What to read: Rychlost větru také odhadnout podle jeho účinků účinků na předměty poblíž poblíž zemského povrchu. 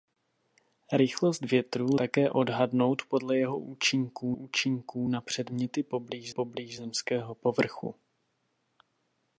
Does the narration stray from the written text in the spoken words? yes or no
no